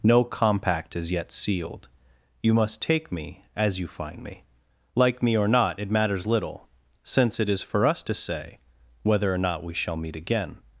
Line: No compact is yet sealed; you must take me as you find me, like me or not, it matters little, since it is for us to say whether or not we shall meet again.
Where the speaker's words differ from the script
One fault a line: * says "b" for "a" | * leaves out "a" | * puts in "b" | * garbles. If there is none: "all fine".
all fine